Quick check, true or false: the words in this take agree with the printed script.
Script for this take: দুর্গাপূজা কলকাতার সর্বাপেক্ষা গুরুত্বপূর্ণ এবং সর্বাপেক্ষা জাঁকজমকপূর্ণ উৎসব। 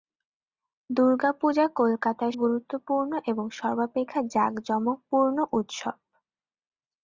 false